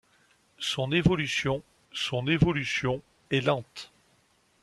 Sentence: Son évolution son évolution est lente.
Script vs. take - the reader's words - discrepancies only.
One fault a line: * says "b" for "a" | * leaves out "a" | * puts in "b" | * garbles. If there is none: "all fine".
all fine